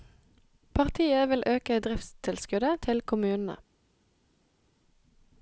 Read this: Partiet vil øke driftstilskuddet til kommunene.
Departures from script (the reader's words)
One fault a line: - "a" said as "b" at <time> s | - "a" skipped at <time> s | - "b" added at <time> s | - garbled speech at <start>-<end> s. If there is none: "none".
none